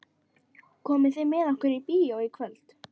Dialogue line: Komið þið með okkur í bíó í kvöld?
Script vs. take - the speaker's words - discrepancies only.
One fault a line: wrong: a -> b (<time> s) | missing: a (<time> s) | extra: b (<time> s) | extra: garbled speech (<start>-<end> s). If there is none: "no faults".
no faults